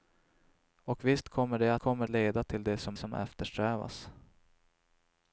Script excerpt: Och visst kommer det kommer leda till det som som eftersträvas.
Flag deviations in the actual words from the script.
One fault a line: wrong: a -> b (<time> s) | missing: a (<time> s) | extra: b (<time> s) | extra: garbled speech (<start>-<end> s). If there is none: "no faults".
no faults